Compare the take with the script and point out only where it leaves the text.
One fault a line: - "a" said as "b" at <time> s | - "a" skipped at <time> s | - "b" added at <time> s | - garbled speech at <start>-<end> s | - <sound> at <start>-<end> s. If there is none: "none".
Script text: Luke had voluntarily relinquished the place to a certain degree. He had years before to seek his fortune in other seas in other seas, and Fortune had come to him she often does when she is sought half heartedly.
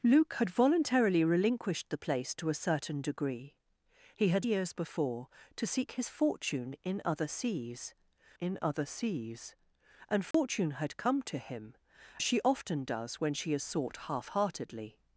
- dropout at 10.3-10.3 s